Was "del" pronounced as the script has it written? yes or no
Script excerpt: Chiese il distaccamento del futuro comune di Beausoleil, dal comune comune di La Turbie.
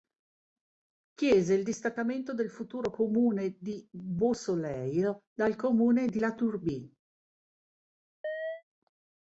yes